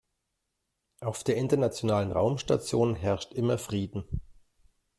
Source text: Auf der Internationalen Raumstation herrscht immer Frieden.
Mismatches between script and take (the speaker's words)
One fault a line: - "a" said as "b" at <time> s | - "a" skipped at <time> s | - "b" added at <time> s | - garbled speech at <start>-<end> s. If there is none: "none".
none